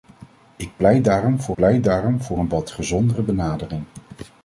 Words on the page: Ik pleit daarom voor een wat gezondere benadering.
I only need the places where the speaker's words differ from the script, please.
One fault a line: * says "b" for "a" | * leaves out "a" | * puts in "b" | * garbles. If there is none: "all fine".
* puts in "pleit daarom voor"